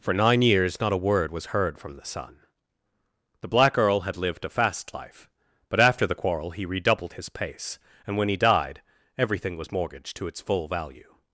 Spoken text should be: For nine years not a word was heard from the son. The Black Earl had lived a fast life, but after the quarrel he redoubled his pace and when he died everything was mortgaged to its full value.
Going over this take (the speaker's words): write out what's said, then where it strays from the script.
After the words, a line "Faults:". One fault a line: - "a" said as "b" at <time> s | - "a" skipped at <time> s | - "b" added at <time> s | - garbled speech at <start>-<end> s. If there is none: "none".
For nine years not a word was heard from the son. The Black Earl had lived a fast life, but after the quarrel he redoubled his pace and when he died everything was mortgaged to its full value.
Faults:
none